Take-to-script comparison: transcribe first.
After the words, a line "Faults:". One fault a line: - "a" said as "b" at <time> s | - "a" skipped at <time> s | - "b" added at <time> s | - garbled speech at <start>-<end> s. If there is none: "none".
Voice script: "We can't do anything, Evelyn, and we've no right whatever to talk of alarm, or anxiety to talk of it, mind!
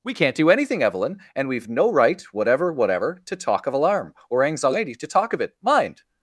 "We can't do anything, Evelyn, and we've no right whatever whatever to talk of alarm, or anxiety to talk of it, mind!
Faults:
- "whatever" added at 2.7 s